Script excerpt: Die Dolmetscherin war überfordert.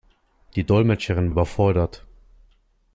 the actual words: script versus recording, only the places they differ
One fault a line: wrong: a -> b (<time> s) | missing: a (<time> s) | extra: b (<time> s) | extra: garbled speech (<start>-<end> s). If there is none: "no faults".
missing: war (1.3 s)